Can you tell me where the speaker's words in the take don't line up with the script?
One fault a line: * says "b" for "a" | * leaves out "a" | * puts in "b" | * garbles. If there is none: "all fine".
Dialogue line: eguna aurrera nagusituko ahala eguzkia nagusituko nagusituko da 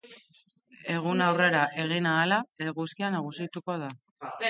* says "egin" for "nagusituko"
* leaves out "nagusituko"